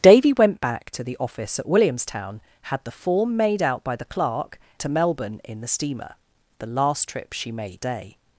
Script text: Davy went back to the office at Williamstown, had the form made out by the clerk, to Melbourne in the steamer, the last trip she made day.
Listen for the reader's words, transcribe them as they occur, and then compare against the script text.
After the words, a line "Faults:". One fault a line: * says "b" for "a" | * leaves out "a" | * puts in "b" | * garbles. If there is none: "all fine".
Davy went back to the office at Williamstown, had the form made out by the clerk, to Melbourne in the steamer, the last trip she made day.
Faults:
all fine